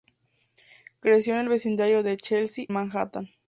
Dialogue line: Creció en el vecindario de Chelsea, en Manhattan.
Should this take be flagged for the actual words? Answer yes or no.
yes